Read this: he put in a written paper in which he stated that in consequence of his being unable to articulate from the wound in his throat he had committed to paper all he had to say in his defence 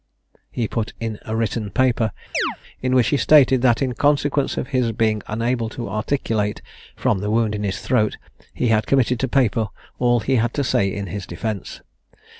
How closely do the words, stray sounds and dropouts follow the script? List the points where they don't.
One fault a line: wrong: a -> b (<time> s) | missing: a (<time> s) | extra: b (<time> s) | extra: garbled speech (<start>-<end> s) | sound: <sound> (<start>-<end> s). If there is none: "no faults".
sound: chirp (2.3-2.6 s)